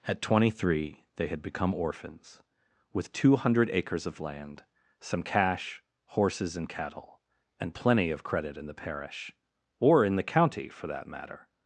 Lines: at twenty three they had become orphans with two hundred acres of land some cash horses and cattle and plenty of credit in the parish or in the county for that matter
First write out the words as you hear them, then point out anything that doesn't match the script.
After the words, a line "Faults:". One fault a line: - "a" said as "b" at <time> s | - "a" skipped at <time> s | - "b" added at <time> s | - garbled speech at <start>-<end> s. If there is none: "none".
at twenty three they had become orphans with two hundred acres of land some cash horses and cattle and plenty of credit in the parish or in the county for that matter
Faults:
none